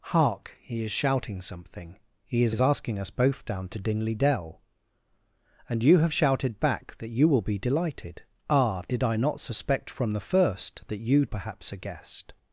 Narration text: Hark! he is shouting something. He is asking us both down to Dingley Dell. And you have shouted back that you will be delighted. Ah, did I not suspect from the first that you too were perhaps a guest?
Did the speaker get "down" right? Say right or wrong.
right